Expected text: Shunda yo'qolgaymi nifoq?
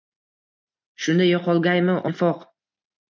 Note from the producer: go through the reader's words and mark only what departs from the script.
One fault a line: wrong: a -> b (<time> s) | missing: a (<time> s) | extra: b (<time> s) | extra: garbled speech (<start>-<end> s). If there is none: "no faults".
no faults